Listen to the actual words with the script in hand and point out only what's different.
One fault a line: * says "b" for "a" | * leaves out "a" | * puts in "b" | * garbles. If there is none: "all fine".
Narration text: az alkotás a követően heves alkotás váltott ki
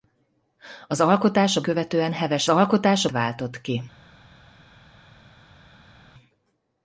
all fine